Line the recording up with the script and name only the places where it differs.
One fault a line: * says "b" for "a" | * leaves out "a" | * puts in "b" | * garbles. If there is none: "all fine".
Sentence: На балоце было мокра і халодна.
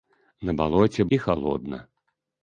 * leaves out "было мокра"